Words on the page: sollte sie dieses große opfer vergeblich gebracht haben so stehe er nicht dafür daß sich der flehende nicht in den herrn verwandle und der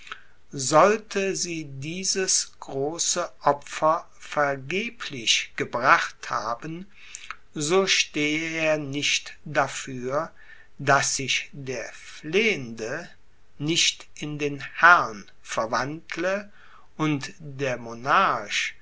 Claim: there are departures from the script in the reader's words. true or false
false